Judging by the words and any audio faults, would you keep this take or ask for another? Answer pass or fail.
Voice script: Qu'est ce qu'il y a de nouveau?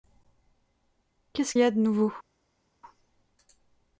fail